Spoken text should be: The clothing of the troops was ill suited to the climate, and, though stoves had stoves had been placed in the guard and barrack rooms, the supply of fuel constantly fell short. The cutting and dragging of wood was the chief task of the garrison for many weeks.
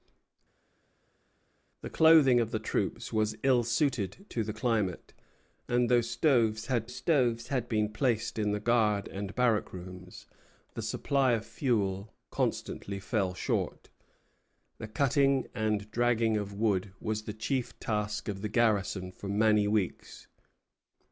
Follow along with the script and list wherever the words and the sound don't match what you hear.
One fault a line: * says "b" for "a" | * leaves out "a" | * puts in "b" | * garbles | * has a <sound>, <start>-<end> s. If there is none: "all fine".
all fine